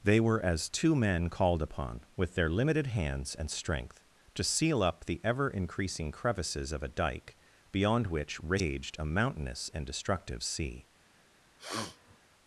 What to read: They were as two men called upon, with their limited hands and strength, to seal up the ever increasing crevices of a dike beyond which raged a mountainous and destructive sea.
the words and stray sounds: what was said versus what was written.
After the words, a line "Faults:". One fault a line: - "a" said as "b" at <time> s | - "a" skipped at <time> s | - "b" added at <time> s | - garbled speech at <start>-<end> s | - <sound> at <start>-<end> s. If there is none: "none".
They were as two men called upon, with their limited hands and strength, to seal up the ever increasing crevices of a dike beyond which raged a mountainous and destructive sea.
Faults:
- sniff at 11.6-12.2 s